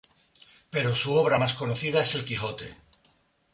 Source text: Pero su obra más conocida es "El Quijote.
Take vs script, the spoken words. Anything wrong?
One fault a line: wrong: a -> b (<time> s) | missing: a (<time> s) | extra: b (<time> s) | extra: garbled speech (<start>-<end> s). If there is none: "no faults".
no faults